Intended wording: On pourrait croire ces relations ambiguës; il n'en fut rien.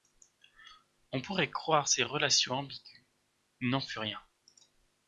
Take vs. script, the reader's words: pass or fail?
pass